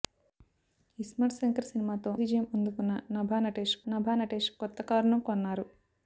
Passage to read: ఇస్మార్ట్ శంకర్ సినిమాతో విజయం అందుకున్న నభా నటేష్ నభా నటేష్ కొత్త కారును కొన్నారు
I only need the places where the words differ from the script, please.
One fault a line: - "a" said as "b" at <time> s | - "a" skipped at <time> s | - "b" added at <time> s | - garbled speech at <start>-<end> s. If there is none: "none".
none